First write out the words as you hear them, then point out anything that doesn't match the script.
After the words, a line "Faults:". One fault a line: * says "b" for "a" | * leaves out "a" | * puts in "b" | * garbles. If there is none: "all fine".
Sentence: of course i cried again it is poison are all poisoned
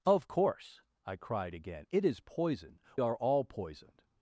of course i cried again it is poison are all poisoned
Faults:
all fine